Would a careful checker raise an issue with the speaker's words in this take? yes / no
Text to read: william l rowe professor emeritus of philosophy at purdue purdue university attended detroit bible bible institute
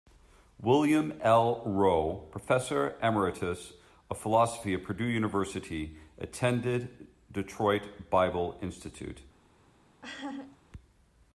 yes